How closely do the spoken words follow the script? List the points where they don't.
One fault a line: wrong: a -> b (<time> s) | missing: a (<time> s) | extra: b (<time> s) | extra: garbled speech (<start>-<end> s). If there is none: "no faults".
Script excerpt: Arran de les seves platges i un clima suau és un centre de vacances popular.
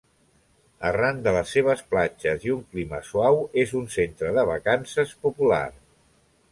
no faults